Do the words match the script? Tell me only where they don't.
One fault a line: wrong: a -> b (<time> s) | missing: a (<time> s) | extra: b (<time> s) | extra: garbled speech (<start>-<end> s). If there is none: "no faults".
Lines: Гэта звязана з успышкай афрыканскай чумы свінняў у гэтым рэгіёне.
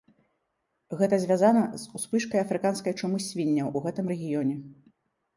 no faults